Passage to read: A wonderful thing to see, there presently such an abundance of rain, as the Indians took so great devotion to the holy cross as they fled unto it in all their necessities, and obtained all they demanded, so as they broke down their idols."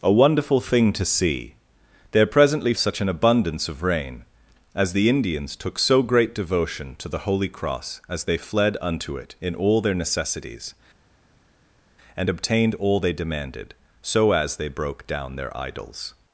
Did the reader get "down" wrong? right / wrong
right